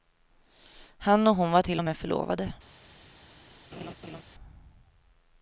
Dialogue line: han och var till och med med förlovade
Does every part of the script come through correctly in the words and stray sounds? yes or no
no